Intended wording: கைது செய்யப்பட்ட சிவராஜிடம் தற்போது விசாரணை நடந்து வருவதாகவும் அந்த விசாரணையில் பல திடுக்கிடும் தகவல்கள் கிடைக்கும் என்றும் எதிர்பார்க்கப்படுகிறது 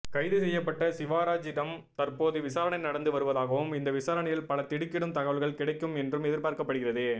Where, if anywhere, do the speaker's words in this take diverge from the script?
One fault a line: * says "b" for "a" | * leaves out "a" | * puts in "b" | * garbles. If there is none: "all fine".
* says "இந்த" for "அந்த"